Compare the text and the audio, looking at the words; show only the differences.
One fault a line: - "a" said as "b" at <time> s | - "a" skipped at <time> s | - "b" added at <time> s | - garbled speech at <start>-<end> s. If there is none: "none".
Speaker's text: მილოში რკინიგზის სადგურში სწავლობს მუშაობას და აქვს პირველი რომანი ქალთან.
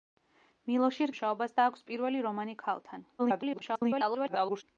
- "რკინიგზის სადგურში სწავლობს" skipped at 1.1 s
- garbled speech at 3.2-4.6 s